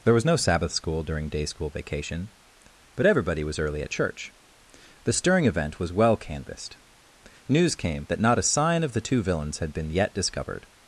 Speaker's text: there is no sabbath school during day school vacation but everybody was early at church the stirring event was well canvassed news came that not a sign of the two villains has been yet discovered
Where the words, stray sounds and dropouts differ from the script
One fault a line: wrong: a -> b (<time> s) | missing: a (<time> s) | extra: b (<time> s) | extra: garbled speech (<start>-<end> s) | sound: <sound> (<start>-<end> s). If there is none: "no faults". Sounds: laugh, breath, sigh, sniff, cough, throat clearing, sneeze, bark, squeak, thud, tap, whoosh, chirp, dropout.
wrong: is -> was (0.1 s)
wrong: has -> had (9.6 s)